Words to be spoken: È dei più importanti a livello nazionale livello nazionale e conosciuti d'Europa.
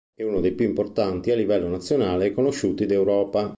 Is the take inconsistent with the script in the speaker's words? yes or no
yes